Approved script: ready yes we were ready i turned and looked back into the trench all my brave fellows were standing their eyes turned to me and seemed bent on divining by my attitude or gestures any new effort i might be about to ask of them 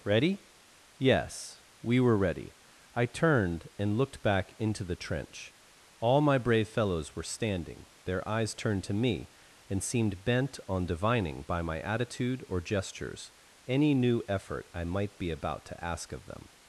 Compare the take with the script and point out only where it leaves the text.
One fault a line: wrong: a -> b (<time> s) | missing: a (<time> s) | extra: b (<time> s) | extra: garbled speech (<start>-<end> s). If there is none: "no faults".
no faults